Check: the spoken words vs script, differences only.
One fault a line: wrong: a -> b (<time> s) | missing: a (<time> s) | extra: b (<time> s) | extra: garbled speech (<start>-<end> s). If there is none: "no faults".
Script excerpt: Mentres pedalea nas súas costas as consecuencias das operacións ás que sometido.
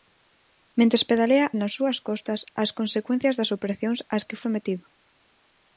no faults